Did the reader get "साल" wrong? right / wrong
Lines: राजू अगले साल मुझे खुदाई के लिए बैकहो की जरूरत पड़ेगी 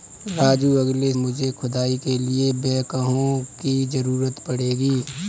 wrong